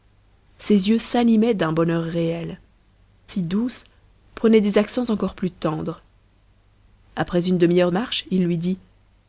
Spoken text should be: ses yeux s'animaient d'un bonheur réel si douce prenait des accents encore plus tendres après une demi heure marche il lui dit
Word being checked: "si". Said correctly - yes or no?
yes